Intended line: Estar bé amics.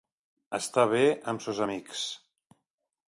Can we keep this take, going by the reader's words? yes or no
no